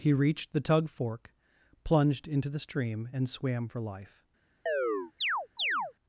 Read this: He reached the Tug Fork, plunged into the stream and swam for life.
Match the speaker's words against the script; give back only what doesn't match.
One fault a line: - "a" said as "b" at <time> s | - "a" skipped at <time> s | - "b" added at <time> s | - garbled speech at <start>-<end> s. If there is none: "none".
none